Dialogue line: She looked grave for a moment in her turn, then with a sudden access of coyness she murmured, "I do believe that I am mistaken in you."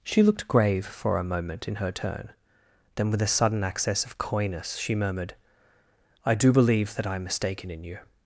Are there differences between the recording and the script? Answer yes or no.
no